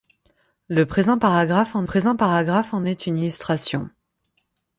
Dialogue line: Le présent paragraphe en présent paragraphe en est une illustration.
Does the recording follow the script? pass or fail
pass